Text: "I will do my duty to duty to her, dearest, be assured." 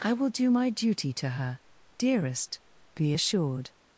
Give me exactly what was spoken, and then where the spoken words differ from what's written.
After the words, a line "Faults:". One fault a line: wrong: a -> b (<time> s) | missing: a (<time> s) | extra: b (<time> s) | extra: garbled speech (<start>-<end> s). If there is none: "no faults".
"I will do my duty to her, dearest, be assured."
Faults:
missing: duty to (1.3 s)